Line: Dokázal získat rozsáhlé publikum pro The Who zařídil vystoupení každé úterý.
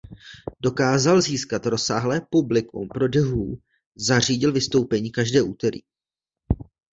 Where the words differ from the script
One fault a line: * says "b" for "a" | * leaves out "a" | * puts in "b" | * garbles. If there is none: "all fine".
all fine